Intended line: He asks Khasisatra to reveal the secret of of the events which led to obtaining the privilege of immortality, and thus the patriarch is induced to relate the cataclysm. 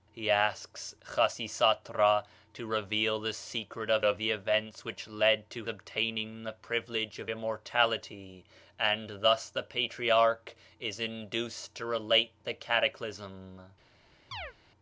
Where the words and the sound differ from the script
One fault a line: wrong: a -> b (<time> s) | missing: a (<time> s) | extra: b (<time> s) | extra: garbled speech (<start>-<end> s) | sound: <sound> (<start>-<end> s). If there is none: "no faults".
sound: chirp (14.3-14.5 s)